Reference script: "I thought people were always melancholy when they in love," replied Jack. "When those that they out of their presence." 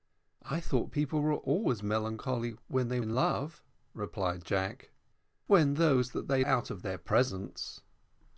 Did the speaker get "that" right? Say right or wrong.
right